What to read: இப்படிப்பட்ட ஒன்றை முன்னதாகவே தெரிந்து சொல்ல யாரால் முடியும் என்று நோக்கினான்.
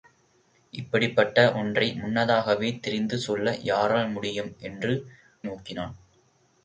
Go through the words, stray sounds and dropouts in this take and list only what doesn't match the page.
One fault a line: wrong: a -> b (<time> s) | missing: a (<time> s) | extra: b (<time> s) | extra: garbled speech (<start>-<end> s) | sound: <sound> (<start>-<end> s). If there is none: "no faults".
no faults